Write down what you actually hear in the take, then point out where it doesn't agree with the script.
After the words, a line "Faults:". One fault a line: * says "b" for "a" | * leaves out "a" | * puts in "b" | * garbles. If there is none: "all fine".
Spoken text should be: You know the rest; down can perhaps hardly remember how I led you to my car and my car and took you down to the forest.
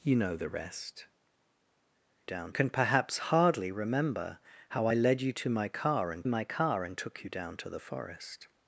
You know the rest; down can perhaps hardly remember how I led you to my car and my car and took you down to the forest.
Faults:
all fine